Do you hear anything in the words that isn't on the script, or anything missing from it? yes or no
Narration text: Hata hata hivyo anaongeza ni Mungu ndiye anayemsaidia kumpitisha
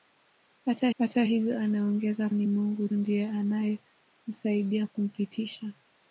no